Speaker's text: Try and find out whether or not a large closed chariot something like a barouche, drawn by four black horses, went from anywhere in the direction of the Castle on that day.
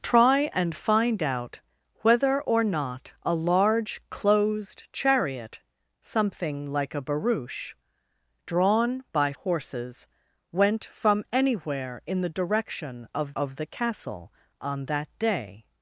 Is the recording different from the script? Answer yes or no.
yes